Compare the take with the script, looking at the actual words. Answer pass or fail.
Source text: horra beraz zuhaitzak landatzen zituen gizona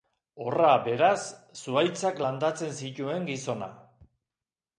pass